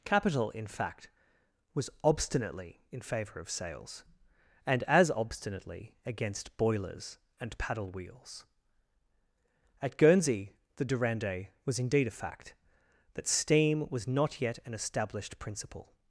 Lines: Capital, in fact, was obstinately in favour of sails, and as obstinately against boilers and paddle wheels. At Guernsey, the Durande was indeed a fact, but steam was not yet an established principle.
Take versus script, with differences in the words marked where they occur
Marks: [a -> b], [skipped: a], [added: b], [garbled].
Capital, in fact, was obstinately in favour of sails, and as obstinately against boilers and paddle wheels. At Guernsey, the Durande was indeed a fact, [but -> that] steam was not yet an established principle.